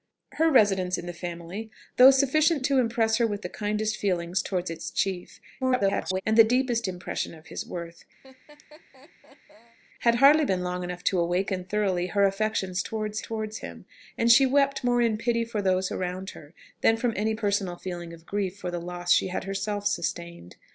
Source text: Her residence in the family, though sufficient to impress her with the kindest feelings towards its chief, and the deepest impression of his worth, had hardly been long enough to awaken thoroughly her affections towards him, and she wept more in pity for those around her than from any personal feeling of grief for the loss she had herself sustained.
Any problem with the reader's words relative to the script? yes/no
yes